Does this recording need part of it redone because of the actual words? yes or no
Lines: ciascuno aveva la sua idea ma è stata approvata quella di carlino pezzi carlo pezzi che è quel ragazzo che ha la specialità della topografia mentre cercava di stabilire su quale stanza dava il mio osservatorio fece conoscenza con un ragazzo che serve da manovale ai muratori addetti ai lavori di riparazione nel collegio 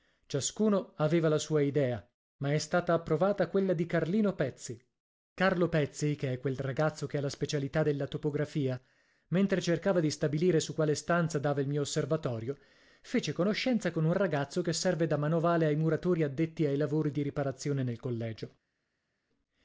no